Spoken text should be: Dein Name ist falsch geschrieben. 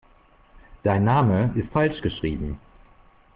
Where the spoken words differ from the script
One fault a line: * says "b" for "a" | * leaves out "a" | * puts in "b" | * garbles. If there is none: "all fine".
all fine